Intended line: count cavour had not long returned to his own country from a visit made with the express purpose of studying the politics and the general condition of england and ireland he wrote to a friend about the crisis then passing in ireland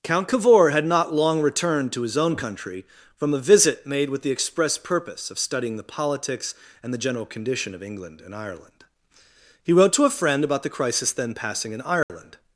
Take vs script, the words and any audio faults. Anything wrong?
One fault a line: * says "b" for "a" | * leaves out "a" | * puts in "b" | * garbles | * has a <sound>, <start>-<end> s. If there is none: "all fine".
* has a dropout, 12.0-12.1 s